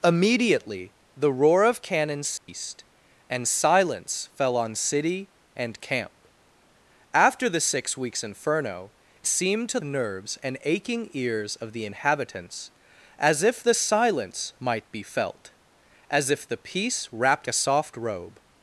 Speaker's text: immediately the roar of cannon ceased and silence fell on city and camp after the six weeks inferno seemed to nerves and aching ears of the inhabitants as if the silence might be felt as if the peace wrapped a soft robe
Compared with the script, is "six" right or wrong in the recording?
right